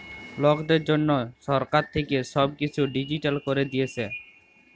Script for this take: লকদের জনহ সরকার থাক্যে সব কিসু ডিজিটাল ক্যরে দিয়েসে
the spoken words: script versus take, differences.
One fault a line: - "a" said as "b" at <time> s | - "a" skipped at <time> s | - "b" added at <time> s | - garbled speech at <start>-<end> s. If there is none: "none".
none